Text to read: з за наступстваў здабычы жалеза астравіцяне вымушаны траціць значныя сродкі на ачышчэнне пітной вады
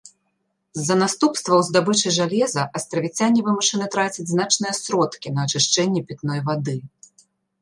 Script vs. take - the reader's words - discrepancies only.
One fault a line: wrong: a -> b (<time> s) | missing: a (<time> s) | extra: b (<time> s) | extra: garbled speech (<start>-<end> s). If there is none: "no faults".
no faults